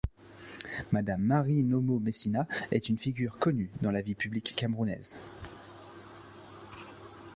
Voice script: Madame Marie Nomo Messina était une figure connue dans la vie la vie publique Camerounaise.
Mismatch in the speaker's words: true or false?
true